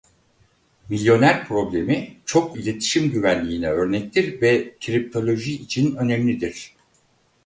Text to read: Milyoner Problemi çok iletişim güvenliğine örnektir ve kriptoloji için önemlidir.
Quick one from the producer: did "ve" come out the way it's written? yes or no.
yes